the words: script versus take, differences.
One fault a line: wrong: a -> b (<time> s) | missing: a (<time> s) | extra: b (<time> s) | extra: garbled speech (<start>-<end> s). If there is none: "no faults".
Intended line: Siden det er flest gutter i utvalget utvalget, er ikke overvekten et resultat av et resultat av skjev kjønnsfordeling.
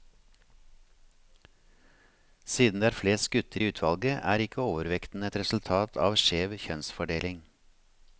missing: utvalget (4.2 s)
missing: et resultat av (6.2 s)